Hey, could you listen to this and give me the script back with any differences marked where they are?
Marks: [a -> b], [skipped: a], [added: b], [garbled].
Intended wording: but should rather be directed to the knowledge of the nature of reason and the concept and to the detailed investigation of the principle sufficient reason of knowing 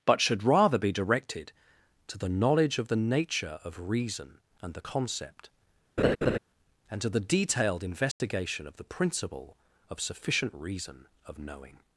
but should rather be directed to the knowledge of the nature of reason and the concept and to the detailed investigation of the principle [added: of] sufficient reason of knowing